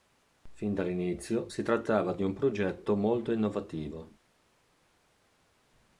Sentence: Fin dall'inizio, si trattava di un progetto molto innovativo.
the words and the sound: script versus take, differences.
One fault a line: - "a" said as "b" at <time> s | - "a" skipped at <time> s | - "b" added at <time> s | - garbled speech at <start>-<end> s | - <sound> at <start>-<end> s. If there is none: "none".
none